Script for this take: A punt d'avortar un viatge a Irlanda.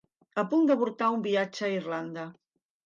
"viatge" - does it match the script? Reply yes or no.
yes